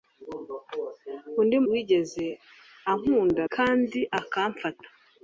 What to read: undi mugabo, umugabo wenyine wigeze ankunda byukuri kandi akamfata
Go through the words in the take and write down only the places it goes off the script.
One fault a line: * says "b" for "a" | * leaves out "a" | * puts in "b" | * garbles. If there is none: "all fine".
* leaves out "mugabo umugabo wenyine"
* leaves out "byukuri"